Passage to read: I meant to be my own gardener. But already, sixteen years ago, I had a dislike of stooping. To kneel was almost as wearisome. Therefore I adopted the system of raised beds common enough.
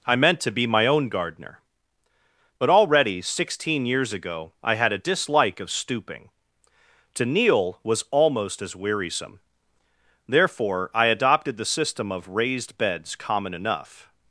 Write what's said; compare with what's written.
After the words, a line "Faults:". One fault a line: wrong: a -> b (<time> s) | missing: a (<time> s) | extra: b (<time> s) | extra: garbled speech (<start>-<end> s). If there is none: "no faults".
I meant to be my own gardener. But already, sixteen years ago, I had a dislike of stooping. To kneel was almost as wearisome. Therefore I adopted the system of raised beds common enough.
Faults:
no faults